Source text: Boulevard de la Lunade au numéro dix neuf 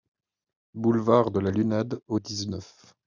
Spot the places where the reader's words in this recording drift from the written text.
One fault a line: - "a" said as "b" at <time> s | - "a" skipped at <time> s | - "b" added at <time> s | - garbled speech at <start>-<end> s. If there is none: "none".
- "numéro" skipped at 2.2 s